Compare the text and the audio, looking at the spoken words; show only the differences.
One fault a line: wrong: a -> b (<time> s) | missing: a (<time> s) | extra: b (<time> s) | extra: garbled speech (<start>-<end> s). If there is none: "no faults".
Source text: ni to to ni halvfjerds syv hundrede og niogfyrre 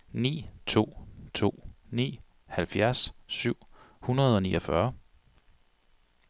no faults